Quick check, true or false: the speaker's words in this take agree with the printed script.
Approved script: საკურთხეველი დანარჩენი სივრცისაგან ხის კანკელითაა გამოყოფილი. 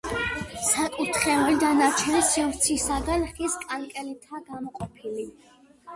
true